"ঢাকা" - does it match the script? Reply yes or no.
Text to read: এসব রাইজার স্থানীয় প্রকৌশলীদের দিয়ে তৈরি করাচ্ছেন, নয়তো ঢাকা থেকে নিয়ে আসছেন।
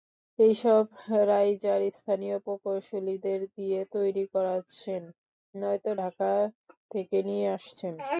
yes